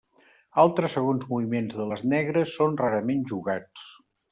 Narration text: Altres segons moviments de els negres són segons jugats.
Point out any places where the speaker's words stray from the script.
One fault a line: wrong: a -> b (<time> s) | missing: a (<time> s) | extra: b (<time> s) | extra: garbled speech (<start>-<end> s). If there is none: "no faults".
wrong: els -> les (1.9 s)
wrong: segons -> rarament (2.9 s)